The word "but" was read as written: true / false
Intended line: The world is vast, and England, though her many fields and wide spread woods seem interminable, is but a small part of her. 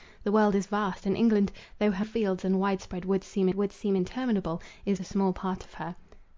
false